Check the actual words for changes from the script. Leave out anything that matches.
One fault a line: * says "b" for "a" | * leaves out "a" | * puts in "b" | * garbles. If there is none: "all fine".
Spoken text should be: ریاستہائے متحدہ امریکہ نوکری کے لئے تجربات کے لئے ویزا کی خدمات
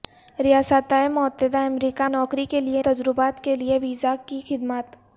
all fine